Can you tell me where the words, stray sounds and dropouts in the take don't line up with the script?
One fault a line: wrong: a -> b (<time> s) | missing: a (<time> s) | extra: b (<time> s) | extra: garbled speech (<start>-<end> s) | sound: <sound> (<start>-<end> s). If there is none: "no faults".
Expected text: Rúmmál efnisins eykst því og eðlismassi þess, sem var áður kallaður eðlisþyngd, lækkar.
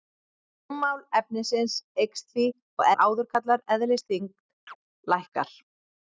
missing: eðlismassi þess sem (2.9 s)
sound: chirp (4.7-4.8 s)